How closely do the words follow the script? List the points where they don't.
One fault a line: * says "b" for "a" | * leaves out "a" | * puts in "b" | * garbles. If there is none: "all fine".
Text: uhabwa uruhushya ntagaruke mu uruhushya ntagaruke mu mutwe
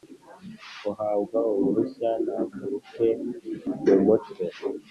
* leaves out "uruhushya ntagaruke mu"